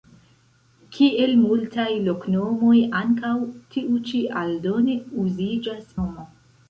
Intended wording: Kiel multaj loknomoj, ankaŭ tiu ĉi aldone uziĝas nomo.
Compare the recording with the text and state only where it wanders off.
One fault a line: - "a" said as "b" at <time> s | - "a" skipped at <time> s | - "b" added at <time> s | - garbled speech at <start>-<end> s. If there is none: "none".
none